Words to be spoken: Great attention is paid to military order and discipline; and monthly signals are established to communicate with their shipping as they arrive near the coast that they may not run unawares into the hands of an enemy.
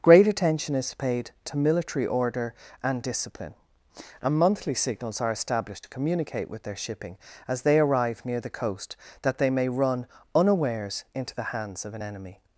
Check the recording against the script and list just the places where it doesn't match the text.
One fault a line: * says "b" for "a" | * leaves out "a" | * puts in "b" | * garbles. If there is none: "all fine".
* leaves out "not"